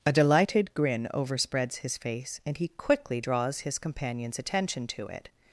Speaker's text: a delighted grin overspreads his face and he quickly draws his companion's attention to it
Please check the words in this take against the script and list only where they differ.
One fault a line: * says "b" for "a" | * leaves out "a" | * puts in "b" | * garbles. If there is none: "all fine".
all fine